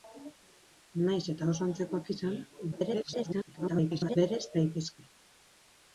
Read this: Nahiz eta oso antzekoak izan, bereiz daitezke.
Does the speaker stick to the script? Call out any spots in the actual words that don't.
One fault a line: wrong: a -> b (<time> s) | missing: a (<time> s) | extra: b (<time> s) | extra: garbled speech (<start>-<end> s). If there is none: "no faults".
extra: garbled speech (2.7-4.2 s)